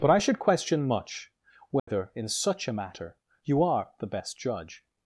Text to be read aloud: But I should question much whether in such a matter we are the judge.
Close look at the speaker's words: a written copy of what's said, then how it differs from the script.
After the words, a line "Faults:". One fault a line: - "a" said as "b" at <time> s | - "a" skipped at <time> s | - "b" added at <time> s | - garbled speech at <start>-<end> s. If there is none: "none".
But I should question much whether in such a matter you are the best judge.
Faults:
- "we" said as "you" at 3.4 s
- "best" added at 4.1 s